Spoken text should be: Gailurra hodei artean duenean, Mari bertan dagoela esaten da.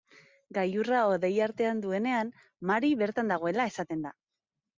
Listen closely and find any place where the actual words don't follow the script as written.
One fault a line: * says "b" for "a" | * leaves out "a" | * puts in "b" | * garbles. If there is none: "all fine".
all fine